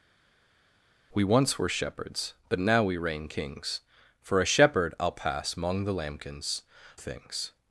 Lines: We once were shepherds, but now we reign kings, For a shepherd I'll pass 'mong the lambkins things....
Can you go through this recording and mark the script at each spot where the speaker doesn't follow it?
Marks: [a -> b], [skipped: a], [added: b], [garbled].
We once were shepherds, but now we reign kings, For a shepherd I'll pass 'mong the lambkins things....